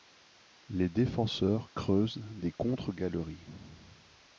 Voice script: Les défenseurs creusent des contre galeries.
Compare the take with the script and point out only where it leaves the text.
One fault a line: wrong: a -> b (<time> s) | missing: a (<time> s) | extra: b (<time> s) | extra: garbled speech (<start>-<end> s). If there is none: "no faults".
no faults